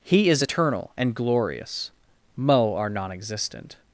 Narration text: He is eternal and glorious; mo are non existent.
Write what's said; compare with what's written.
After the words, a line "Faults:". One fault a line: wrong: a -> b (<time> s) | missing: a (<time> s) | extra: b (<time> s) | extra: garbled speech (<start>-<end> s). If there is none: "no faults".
He is eternal and glorious; mo are non existent.
Faults:
no faults